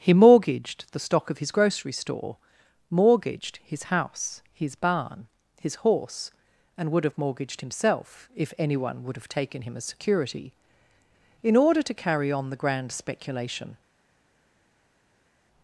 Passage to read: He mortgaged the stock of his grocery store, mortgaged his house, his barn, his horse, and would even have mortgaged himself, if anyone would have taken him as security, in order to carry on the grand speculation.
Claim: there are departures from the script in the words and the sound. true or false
true